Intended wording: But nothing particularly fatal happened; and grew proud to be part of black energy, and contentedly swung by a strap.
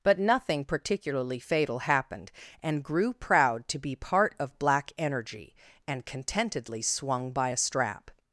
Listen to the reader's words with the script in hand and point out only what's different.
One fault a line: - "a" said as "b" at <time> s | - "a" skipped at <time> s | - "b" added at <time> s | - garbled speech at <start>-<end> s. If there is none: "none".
none